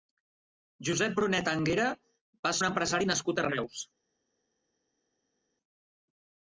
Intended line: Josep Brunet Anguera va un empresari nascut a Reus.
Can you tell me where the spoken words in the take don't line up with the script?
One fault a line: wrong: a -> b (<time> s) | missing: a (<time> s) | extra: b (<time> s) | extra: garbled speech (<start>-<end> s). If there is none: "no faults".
no faults